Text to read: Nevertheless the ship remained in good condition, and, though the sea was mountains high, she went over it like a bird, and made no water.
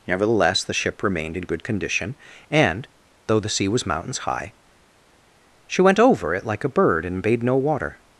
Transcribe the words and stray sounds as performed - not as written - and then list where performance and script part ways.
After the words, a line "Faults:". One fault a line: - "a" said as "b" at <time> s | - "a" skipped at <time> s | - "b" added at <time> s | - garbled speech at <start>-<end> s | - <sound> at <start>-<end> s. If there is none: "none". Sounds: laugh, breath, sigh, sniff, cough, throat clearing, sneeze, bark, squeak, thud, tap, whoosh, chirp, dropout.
Nevertheless the ship remained in good condition, and, though the sea was mountains high, she went over it like a bird, and bade no water.
Faults:
- "made" said as "bade" at 7.2 s